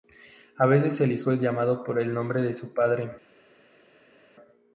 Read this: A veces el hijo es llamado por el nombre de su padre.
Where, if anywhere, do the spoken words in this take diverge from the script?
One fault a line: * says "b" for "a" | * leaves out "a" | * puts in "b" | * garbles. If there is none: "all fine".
all fine